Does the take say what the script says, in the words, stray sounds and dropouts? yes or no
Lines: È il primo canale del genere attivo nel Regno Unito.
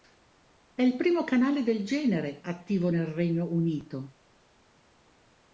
yes